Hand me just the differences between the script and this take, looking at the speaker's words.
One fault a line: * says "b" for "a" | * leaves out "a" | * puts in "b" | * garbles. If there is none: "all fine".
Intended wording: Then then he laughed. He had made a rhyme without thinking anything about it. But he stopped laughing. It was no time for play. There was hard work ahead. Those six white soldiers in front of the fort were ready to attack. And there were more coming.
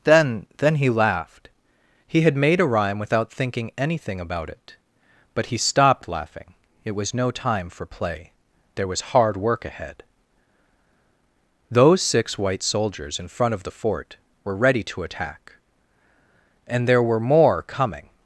all fine